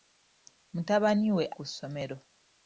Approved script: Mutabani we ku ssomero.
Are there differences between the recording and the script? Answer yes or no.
no